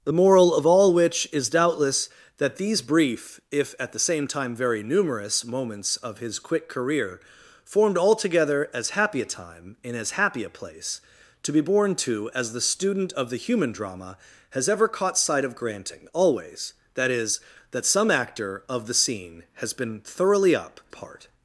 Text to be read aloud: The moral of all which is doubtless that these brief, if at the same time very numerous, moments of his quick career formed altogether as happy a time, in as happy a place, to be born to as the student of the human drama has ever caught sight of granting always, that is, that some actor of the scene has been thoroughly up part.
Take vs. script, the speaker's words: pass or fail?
pass